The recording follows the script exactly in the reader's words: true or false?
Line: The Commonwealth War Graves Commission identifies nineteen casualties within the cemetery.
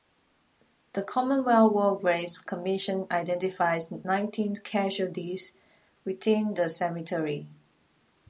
true